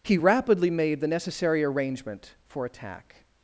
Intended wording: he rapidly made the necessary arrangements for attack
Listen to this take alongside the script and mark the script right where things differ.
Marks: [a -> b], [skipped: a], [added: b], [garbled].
he rapidly made the necessary [arrangements -> arrangement] for attack